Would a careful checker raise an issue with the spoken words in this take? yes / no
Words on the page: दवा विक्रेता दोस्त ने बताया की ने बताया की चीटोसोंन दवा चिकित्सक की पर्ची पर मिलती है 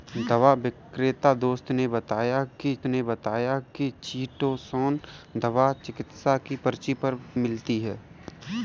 no